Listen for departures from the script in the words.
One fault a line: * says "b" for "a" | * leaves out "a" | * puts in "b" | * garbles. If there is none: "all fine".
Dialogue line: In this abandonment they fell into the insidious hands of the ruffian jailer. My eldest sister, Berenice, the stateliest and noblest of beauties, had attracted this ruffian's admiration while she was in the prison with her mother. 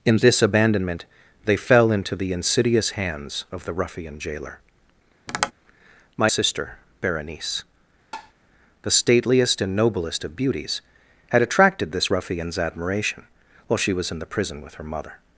* leaves out "eldest"